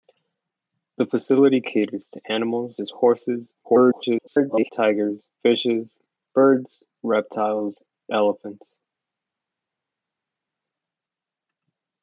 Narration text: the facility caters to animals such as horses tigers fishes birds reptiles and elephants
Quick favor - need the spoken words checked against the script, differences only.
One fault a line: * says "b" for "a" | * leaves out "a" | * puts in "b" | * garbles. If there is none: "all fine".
* leaves out "such"
* garbles
* leaves out "and"